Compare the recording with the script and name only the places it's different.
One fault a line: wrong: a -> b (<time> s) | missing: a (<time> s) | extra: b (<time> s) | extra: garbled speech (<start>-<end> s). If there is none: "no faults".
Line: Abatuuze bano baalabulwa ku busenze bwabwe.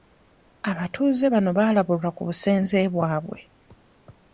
no faults